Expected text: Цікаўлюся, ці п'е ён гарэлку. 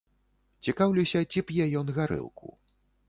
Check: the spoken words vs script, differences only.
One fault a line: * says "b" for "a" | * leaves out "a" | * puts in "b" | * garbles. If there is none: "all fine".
all fine